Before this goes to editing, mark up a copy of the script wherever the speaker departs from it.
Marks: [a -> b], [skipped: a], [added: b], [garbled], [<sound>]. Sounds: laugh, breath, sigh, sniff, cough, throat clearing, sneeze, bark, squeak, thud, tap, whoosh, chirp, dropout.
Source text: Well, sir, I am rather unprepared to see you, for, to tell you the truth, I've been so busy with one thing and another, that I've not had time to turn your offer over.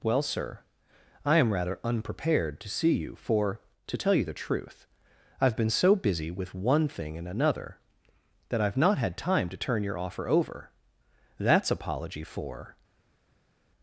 Well, sir, I am rather unprepared to see you, for, to tell you the truth, I've been so busy with one thing and another, that I've not had time to turn your offer over. [added: That's apology for]